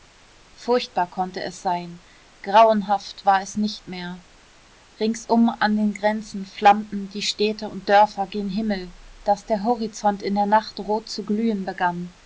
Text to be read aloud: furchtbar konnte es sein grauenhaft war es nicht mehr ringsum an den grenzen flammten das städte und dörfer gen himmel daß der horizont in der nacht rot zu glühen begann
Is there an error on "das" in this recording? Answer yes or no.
yes